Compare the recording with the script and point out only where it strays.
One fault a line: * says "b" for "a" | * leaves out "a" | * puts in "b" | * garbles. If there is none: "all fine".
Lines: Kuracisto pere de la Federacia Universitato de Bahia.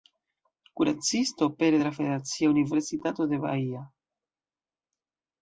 all fine